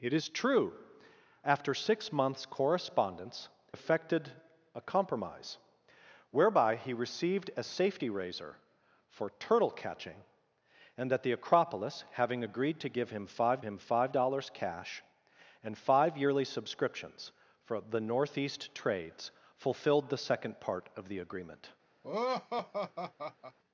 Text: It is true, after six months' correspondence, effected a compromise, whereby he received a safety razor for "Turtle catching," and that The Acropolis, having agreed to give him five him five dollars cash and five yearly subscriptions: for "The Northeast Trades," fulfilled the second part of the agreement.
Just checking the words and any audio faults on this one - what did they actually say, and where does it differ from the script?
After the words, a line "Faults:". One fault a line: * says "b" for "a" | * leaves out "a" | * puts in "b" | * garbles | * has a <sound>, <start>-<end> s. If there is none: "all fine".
It is true, after six months' correspondence, effected a compromise, whereby he received a safety razor for "Turtle catching," and that The Acropolis, having agreed to give him five him five dollars cash and five yearly subscriptions: for "The Northeast Trades," fulfilled the second part of the agreement.
Faults:
* has a laugh, 22.0-23.6 s